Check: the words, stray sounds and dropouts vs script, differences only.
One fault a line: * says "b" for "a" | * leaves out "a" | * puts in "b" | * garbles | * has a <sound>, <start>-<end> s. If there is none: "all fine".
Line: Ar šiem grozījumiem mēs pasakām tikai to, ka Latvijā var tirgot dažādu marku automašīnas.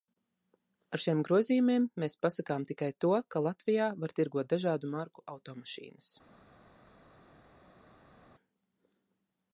all fine